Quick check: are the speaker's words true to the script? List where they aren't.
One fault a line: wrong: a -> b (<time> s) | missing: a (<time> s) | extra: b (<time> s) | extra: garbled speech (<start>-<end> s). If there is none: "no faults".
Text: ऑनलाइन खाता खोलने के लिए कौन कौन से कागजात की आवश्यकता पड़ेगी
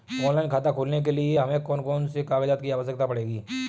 extra: हमें (1.4 s)